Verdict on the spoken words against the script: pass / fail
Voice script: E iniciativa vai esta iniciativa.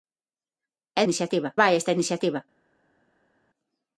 pass